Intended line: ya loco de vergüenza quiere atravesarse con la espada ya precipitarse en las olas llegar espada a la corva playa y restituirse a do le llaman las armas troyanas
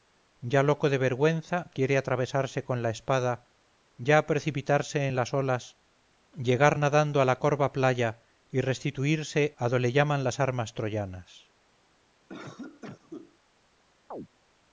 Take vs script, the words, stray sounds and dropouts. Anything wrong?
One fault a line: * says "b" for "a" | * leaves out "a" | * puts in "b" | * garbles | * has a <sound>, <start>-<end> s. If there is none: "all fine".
* says "nadando" for "espada"
* has a cough, 12.3-13.4 s
* has a chirp, 14.1-14.3 s